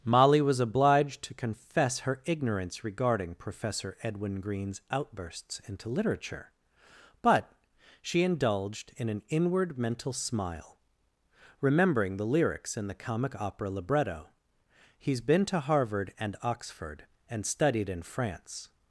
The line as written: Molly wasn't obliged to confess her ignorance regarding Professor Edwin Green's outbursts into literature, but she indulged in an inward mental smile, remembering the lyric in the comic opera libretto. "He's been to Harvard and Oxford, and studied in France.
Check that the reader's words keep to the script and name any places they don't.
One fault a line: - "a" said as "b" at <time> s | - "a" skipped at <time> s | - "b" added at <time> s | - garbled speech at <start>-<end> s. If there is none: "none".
- "wasn't" said as "was" at 0.4 s
- "lyric" said as "lyrics" at 12.2 s